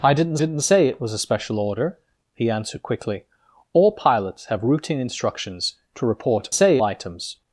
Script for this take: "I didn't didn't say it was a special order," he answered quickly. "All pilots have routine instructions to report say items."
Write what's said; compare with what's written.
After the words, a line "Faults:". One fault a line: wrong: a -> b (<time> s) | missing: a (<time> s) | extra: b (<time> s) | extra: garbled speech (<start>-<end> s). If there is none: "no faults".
"I didn't didn't say it was a special order," he answered quickly. "All pilots have routine instructions to report say items."
Faults:
no faults